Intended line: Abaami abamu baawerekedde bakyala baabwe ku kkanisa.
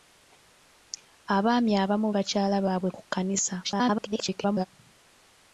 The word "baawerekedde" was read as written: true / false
false